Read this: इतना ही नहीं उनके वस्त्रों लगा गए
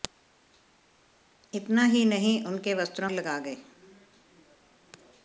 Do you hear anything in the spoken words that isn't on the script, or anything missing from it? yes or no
no